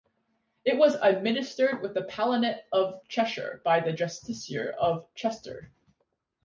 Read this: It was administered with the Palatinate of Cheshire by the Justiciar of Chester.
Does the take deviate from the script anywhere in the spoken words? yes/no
no